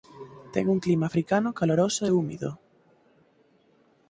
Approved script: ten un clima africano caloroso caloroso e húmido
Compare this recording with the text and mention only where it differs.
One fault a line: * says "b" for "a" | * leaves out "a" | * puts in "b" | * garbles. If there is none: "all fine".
* leaves out "caloroso"